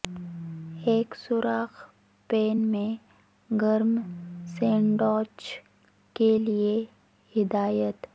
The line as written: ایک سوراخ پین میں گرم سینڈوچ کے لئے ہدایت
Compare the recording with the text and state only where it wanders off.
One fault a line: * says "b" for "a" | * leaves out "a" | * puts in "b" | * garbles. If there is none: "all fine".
all fine